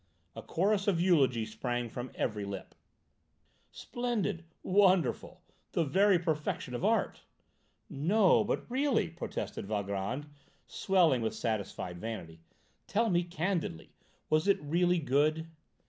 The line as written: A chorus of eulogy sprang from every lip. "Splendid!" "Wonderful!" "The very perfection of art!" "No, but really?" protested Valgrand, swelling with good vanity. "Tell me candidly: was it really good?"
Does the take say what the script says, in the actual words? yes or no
no